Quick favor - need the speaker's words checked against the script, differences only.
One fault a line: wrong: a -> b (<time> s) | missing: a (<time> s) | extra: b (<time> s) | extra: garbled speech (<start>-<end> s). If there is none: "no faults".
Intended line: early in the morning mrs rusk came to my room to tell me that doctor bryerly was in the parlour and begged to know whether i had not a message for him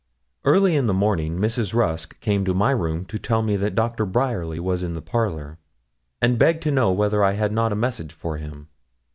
no faults